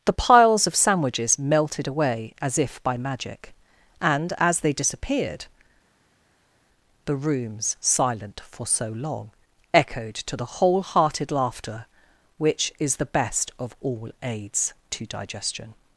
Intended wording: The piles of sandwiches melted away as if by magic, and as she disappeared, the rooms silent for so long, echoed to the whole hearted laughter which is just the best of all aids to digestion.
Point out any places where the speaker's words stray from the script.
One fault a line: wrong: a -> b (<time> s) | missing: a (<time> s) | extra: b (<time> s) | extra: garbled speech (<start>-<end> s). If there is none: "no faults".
wrong: she -> they (4.6 s)
missing: just (13.0 s)